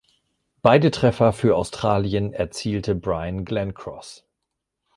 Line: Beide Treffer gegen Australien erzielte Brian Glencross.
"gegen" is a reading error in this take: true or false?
true